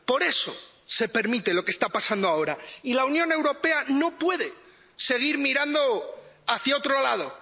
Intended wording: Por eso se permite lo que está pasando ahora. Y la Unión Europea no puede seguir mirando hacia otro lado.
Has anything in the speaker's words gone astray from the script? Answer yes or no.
no